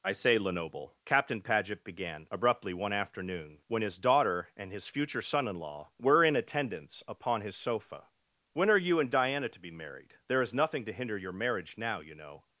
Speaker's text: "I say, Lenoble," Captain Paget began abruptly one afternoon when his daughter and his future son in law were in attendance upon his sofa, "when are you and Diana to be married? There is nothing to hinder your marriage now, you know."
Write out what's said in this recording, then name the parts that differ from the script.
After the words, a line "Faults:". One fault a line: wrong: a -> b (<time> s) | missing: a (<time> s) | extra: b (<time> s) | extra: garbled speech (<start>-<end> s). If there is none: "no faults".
"I say, Lenoble," Captain Paget began abruptly one afternoon when his daughter and his future son in law were in attendance upon his sofa, "when are you and Diana to be married? There is nothing to hinder your marriage now, you know."
Faults:
no faults